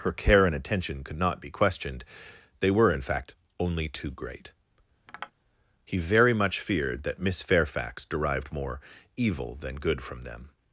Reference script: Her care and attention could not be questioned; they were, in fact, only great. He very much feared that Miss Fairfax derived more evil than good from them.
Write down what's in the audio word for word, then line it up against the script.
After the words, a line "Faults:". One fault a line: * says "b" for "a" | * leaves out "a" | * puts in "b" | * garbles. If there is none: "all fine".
Her care and attention could not be questioned; they were, in fact, only too great. He very much feared that Miss Fairfax derived more evil than good from them.
Faults:
* puts in "too"